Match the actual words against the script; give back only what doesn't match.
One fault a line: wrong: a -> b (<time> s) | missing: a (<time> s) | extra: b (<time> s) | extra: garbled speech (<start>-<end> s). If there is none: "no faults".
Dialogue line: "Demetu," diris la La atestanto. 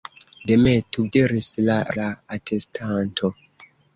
no faults